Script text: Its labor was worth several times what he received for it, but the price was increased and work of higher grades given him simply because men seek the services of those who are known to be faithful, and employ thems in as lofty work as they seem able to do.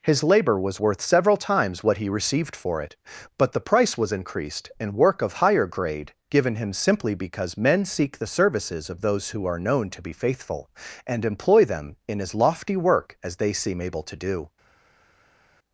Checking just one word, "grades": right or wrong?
wrong